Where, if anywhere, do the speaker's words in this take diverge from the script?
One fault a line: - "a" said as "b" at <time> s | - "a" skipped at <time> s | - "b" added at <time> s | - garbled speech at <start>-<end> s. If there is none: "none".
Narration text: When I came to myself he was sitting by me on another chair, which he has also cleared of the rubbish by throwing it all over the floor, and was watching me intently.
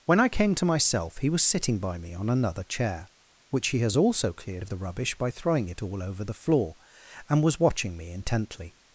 none